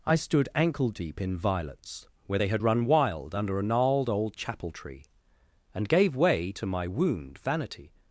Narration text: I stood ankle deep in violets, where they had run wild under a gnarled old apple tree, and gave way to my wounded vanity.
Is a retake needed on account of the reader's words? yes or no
yes